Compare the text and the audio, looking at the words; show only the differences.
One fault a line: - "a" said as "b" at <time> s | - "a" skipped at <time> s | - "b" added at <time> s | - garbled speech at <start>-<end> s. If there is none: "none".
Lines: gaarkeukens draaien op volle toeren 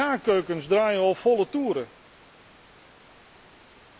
none